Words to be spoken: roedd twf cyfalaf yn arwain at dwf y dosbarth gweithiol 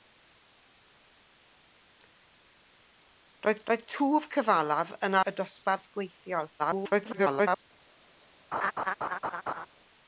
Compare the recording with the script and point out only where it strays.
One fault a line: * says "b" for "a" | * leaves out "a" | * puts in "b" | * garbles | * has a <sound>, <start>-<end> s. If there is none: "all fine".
* puts in "roedd"
* leaves out "arwain at dwf"
* garbles
* has a laugh, 8.5-9.7 s